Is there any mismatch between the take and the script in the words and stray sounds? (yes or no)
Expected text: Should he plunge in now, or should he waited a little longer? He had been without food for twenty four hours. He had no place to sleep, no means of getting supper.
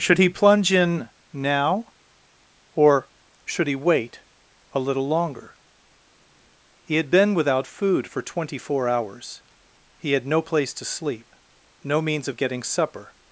yes